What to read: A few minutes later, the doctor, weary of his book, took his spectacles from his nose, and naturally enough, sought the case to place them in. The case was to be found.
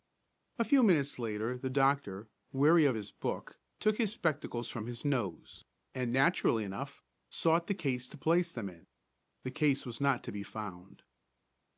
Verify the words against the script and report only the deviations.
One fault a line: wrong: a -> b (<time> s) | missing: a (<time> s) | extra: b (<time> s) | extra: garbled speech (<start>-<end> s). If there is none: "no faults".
extra: not (10.0 s)